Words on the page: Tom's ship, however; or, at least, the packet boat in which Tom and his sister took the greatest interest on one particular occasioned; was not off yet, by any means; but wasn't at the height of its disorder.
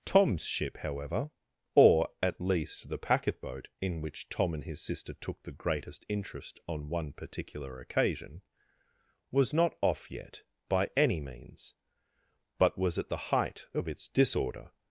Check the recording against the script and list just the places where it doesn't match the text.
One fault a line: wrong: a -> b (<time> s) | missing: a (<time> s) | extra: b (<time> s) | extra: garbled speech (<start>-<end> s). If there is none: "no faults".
wrong: occasioned -> occasion (7.8 s)
wrong: wasn't -> was (12.8 s)